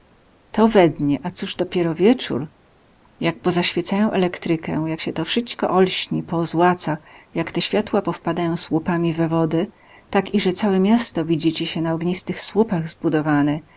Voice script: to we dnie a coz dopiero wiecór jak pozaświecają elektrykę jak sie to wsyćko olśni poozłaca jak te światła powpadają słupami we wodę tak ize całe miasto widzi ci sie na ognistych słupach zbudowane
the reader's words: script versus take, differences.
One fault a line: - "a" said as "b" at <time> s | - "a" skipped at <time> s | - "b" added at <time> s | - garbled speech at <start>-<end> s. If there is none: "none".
none